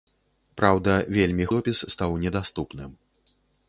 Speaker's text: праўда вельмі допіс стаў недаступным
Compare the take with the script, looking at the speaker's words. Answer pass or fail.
pass